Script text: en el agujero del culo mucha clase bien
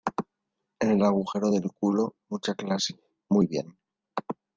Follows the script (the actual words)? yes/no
no